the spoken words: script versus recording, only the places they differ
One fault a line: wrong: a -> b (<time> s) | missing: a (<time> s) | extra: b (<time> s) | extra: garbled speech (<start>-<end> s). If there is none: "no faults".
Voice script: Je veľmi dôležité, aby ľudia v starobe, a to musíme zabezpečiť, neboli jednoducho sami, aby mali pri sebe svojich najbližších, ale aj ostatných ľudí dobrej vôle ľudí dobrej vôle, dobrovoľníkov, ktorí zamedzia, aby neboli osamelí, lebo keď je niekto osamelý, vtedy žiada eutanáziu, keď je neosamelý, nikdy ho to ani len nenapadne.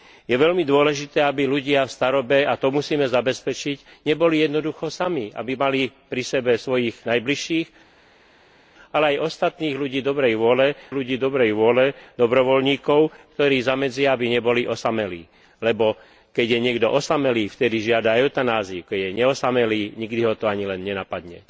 no faults